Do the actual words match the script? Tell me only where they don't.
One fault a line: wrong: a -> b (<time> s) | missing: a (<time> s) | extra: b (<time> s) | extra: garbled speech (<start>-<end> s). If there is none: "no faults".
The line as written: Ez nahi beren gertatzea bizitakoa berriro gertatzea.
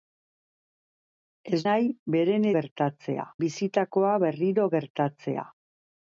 no faults